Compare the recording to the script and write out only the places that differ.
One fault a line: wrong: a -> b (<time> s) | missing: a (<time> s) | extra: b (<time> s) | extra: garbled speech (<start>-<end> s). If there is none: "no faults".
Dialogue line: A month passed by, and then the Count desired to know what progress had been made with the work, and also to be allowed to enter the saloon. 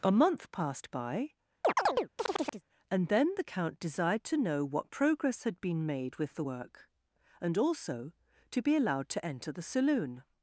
no faults